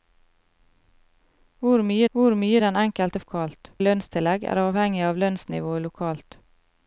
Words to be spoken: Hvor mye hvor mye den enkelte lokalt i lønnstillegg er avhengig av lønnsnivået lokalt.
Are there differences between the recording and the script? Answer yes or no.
no